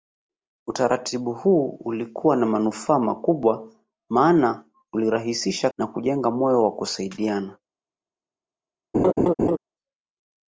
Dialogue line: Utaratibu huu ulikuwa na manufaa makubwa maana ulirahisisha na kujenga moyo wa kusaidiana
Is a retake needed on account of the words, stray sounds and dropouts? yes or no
yes